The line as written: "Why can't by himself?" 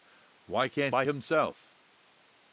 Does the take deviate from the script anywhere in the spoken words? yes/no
no